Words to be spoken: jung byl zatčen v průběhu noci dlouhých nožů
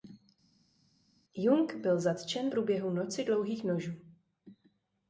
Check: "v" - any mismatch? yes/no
yes